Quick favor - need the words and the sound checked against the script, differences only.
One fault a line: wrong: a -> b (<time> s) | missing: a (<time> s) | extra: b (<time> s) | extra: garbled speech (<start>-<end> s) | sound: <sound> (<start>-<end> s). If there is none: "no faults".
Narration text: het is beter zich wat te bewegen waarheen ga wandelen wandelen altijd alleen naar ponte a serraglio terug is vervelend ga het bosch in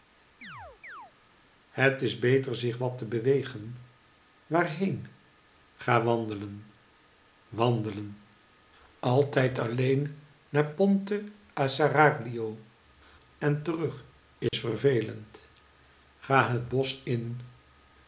sound: chirp (0.4-1.1 s)
extra: en (13.4 s)
sound: dropout (14.5-14.5 s)